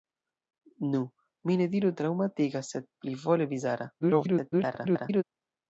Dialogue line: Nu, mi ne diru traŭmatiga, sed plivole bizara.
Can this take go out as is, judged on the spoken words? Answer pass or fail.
fail